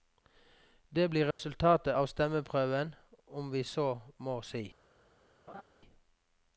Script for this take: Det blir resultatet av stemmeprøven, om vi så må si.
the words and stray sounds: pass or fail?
fail